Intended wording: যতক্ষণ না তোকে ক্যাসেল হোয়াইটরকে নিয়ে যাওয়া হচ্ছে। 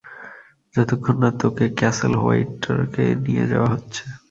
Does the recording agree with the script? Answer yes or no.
yes